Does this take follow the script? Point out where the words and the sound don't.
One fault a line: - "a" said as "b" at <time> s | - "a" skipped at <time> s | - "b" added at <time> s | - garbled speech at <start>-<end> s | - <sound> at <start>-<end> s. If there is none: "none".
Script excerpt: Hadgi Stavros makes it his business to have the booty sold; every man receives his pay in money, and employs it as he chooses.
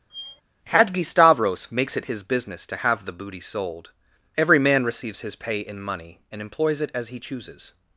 - squeak at 0.1-0.4 s